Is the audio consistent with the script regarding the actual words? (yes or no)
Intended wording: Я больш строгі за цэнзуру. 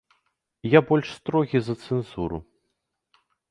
yes